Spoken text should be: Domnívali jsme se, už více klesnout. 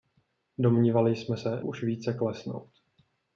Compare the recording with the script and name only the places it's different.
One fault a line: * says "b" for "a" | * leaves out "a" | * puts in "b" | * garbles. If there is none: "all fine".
all fine